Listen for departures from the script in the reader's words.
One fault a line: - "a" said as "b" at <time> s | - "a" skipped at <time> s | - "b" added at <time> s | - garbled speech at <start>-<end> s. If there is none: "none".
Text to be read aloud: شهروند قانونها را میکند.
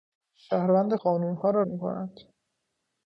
none